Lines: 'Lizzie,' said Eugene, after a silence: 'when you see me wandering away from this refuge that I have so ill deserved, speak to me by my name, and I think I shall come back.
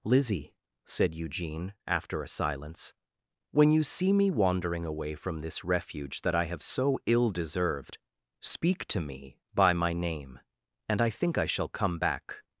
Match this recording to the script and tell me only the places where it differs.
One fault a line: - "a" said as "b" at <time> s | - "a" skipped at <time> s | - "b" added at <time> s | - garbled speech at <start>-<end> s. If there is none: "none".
none